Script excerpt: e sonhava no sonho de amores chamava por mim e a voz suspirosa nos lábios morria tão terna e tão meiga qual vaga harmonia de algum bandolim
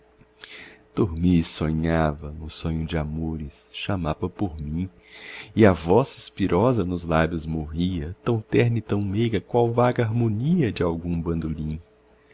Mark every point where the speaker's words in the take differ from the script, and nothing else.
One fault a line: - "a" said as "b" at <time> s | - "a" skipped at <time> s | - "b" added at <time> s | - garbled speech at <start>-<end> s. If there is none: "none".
none